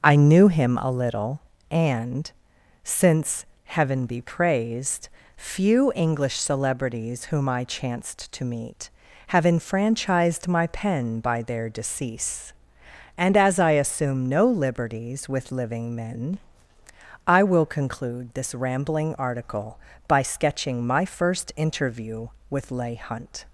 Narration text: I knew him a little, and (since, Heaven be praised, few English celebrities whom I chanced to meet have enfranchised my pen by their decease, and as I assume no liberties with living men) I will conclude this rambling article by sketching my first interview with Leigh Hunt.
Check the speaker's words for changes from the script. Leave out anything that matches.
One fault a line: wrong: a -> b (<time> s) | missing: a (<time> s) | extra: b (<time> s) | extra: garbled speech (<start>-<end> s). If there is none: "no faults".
no faults